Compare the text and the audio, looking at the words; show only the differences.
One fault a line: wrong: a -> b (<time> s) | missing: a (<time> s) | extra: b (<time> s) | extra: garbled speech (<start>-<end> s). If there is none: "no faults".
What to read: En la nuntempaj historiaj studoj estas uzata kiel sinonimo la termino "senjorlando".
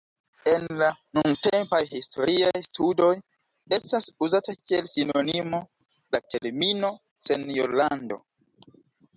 no faults